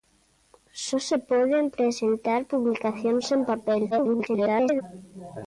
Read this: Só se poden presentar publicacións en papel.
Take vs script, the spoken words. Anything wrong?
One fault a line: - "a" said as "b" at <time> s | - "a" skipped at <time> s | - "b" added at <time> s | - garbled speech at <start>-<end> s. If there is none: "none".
- garbled speech at 3.9-4.8 s